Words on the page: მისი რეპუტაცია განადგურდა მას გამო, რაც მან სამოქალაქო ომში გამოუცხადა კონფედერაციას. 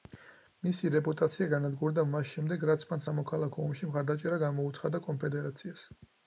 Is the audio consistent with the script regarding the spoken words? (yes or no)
no